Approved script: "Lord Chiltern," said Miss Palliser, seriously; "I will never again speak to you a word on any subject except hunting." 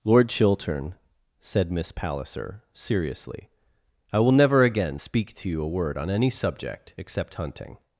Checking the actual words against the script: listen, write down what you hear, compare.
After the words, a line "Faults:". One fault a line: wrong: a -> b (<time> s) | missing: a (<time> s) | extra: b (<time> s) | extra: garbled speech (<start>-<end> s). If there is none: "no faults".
"Lord Chiltern," said Miss Palliser, seriously; "I will never again speak to you a word on any subject except hunting."
Faults:
no faults